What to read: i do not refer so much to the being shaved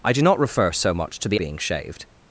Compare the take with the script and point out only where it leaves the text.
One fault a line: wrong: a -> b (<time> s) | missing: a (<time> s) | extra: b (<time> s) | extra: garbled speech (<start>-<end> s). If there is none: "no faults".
no faults